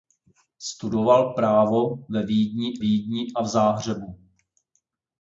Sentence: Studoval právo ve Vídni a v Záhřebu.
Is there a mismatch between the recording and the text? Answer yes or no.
yes